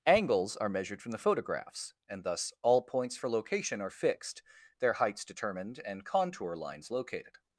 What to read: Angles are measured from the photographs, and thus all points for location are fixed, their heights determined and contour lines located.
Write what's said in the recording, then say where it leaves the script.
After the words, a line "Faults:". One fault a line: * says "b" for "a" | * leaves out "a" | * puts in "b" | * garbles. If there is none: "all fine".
Angles are measured from the photographs, and thus all points for location are fixed, their heights determined and contour lines located.
Faults:
all fine